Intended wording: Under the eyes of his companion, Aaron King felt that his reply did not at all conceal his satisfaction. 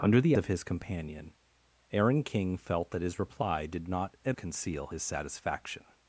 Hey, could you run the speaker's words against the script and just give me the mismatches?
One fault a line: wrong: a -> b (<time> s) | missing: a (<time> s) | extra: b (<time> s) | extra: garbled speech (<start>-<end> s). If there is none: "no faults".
missing: eyes (0.3 s)
missing: all (4.3 s)